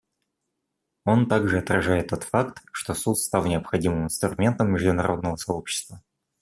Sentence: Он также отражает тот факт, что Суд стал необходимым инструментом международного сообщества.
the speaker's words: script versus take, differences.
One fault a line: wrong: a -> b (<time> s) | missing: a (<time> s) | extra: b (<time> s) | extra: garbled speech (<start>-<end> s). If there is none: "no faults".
no faults